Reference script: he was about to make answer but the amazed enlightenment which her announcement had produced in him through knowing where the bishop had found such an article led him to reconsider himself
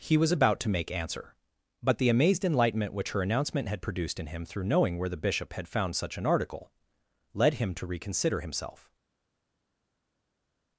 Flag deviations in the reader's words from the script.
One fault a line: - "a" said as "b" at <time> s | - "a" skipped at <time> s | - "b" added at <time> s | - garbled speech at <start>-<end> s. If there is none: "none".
none